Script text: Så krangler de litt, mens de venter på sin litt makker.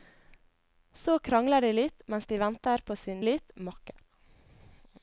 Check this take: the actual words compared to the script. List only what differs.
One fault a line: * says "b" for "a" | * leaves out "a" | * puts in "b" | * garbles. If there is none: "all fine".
all fine